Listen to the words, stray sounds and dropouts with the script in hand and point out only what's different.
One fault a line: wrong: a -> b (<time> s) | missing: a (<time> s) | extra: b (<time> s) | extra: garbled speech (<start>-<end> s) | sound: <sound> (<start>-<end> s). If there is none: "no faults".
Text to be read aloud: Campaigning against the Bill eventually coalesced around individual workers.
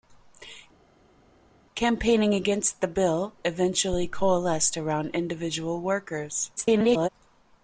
extra: garbled speech (6.6-7.1 s)